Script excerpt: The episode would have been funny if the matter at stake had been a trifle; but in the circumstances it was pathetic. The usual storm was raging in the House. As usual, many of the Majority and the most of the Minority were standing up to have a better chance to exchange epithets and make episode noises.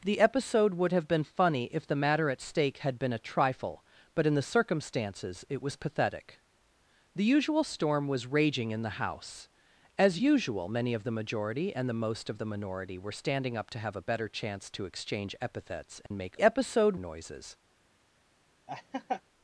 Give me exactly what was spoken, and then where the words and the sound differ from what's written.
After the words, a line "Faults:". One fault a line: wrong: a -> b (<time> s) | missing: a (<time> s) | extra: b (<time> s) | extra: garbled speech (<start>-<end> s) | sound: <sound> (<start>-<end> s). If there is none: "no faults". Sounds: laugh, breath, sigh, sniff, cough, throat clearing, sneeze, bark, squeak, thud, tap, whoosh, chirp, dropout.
The episode would have been funny if the matter at stake had been a trifle; but in the circumstances it was pathetic. The usual storm was raging in the House. As usual, many of the Majority and the most of the Minority were standing up to have a better chance to exchange epithets and make episode noises.
Faults:
sound: dropout (16.1-16.1 s)
sound: laugh (18.7-19.2 s)